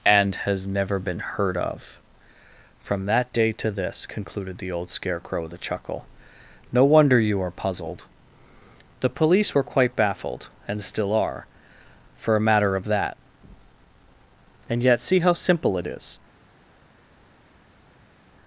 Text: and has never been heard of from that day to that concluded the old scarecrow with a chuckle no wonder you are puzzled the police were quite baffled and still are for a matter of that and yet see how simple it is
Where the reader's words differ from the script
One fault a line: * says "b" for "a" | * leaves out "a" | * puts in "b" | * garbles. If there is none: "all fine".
* says "this" for "that"